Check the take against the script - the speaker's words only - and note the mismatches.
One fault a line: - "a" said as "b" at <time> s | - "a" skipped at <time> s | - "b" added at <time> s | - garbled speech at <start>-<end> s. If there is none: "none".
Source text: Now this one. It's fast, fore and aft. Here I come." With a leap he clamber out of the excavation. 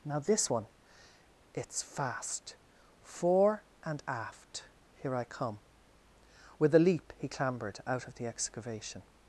- "clamber" said as "clambered" at 7.3 s